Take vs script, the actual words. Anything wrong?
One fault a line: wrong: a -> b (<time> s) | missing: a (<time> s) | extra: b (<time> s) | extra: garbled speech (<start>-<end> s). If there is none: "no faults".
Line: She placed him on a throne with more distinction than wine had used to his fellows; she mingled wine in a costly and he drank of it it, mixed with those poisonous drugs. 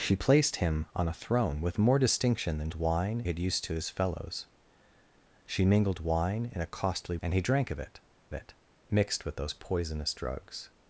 no faults